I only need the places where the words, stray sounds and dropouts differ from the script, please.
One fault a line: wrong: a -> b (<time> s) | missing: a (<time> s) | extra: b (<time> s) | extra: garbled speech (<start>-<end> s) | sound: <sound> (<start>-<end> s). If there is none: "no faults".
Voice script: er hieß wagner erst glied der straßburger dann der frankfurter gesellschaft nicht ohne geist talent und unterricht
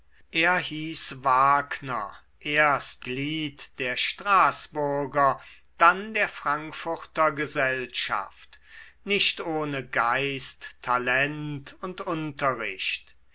no faults